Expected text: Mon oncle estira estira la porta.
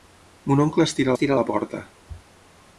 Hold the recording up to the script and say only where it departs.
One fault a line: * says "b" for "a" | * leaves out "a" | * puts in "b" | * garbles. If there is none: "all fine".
all fine